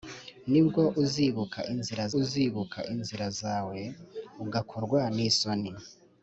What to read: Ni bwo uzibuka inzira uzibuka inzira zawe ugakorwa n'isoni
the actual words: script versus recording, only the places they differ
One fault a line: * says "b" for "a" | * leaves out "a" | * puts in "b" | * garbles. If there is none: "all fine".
all fine